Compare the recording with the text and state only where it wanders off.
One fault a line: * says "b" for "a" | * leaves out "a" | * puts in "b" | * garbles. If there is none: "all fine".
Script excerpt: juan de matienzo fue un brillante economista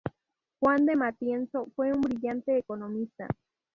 all fine